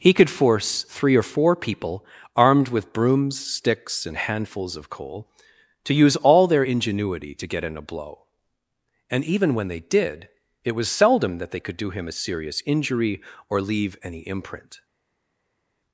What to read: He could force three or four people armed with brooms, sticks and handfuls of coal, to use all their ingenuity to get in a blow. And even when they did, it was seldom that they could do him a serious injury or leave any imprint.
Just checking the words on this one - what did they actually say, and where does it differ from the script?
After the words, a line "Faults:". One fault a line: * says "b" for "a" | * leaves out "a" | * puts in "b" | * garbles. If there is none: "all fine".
He could force three or four people armed with brooms, sticks and handfuls of coal, to use all their ingenuity to get in a blow. And even when they did, it was seldom that they could do him a serious injury or leave any imprint.
Faults:
all fine